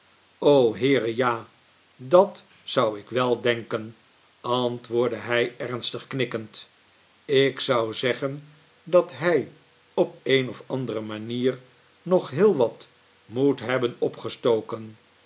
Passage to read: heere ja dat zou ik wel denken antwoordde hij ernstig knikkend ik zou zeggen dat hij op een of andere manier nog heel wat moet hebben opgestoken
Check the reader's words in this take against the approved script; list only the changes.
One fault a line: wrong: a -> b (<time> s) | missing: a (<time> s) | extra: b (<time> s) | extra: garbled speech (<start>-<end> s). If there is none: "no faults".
no faults